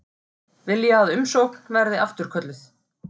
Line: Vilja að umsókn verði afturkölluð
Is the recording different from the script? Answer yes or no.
no